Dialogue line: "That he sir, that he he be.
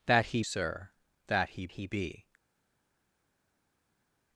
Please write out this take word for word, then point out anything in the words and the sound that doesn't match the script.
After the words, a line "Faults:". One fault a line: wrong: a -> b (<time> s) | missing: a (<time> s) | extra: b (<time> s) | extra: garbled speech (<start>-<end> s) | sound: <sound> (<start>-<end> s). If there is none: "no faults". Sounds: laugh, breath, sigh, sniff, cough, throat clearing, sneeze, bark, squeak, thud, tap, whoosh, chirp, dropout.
"That he sir, that he he be.
Faults:
no faults